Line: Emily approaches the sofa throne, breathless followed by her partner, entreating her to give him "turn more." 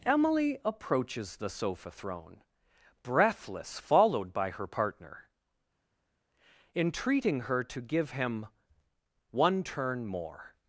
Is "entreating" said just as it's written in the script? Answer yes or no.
yes